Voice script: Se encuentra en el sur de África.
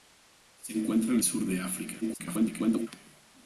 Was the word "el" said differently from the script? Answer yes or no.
yes